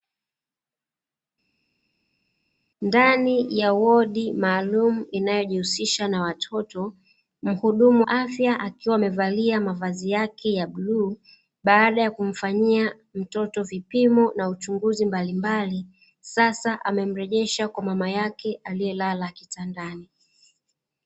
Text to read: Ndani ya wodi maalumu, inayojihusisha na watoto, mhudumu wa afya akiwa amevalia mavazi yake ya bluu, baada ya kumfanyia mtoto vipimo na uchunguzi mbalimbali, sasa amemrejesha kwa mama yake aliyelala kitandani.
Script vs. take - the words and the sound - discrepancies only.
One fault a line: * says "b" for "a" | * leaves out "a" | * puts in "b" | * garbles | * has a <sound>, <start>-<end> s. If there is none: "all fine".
* leaves out "wa"